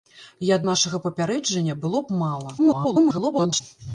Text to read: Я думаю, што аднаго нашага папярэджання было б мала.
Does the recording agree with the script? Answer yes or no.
no